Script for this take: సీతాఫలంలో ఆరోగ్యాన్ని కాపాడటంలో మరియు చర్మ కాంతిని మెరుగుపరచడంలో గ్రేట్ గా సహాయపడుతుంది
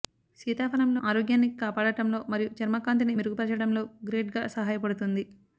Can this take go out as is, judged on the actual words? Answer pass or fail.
pass